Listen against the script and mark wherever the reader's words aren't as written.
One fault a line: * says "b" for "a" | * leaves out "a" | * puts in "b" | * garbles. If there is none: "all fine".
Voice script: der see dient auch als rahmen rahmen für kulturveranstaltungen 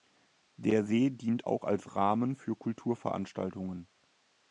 * leaves out "rahmen"